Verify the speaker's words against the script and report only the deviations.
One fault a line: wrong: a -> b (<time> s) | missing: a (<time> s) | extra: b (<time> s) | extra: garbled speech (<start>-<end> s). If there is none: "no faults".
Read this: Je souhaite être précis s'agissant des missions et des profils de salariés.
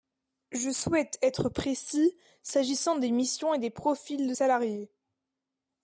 no faults